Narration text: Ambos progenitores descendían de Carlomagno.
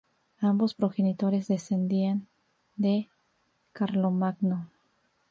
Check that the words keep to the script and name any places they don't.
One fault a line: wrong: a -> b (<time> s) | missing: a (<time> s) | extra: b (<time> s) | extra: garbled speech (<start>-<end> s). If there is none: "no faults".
no faults